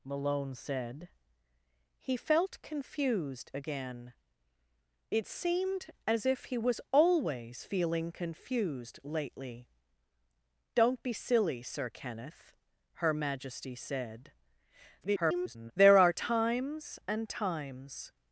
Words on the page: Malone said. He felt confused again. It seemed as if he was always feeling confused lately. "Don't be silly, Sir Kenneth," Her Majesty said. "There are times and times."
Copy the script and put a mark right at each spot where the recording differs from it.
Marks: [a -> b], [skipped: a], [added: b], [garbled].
Malone said. He felt confused again. It seemed as if he was always feeling confused lately. "Don't be silly, Sir Kenneth," Her Majesty said. [garbled] "There are times and times."